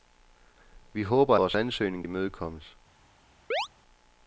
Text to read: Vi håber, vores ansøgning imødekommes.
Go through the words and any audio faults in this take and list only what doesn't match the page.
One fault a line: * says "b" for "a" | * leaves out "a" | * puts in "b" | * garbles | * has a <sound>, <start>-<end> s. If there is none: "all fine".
* has a chirp, 3.5-3.7 s